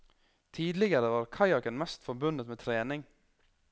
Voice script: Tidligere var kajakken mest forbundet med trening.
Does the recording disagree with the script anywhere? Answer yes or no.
no